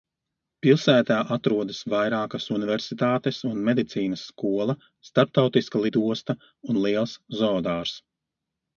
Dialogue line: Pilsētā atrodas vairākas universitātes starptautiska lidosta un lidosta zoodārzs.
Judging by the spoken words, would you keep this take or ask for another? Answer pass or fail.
fail